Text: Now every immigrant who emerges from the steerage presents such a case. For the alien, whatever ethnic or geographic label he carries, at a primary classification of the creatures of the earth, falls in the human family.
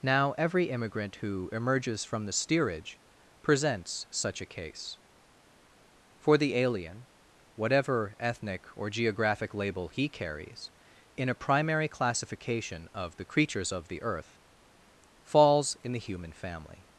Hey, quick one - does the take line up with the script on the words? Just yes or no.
no